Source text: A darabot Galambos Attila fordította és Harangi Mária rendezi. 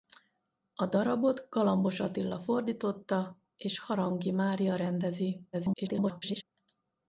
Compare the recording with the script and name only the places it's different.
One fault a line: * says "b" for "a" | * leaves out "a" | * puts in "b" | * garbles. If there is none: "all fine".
* garbles